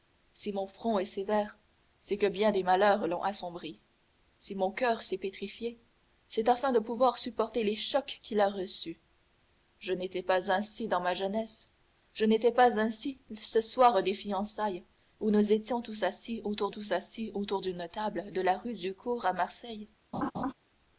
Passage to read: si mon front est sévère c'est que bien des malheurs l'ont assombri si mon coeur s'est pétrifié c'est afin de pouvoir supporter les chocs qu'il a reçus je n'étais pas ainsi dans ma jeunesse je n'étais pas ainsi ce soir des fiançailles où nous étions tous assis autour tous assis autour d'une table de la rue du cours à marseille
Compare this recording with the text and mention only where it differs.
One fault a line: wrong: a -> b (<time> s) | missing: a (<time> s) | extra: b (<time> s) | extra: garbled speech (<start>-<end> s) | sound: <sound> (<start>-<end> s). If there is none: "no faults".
sound: laugh (20.1-20.5 s)